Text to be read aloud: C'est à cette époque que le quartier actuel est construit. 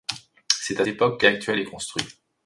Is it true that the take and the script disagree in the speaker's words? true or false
true